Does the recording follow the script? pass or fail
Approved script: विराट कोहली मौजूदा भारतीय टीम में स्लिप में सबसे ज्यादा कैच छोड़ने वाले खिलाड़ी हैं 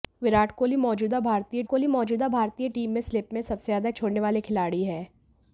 fail